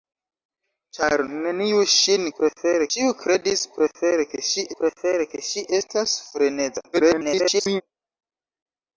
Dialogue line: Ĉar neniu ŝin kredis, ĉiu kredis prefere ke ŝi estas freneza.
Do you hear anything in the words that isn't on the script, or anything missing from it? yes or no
yes